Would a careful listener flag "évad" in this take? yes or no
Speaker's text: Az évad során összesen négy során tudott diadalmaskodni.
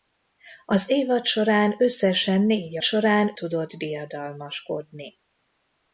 no